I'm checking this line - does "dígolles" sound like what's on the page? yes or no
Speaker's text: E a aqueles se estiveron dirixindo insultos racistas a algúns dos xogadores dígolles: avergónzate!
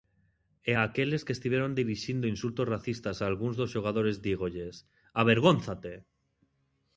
yes